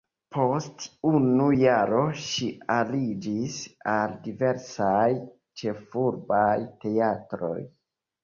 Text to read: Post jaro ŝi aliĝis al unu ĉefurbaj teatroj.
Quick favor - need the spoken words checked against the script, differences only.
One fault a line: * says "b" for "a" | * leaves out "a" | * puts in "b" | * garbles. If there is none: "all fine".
* puts in "unu"
* says "diversaj" for "unu"